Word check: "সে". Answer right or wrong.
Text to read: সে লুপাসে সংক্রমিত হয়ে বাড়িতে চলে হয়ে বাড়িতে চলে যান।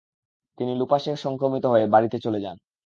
wrong